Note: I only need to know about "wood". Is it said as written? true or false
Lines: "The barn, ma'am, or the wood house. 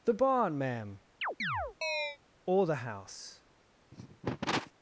false